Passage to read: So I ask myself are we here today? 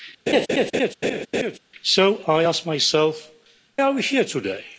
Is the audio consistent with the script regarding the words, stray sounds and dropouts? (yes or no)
no